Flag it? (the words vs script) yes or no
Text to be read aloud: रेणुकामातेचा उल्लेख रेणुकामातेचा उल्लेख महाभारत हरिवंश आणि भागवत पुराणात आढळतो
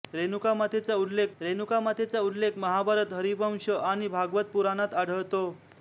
no